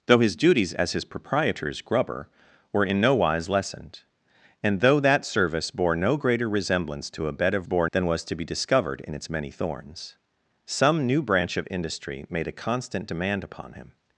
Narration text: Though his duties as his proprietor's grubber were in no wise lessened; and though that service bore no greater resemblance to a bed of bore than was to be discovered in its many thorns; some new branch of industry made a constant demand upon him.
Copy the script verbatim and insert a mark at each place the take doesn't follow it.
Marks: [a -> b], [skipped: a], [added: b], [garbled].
Though his duties as his proprietor's grubber were in no wise lessened; and though that service bore no greater resemblance to a bed of bore than was to be discovered in its many thorns; some new branch of industry made a constant demand upon him.